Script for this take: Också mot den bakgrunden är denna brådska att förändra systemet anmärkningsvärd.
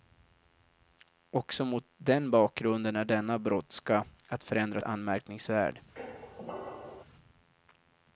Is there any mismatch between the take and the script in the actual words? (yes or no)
yes